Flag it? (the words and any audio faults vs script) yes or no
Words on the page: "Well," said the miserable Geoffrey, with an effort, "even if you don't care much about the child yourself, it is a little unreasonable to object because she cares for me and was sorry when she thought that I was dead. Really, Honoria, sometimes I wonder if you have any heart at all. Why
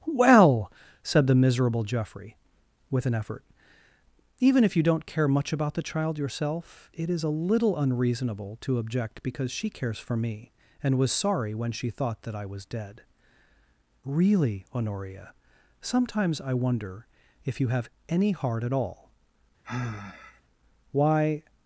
yes